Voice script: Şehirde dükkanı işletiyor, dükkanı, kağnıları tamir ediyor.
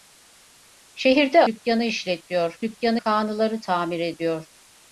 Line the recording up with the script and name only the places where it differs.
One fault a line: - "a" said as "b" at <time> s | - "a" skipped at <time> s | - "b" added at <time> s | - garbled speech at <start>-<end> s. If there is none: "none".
none